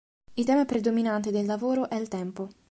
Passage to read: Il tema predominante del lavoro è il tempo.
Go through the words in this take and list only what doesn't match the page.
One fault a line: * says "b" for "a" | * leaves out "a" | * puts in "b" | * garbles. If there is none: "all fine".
all fine